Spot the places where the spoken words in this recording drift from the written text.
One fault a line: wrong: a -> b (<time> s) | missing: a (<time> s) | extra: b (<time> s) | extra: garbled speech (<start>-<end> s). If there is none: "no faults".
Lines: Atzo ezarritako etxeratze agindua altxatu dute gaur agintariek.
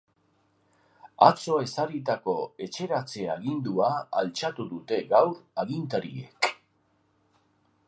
no faults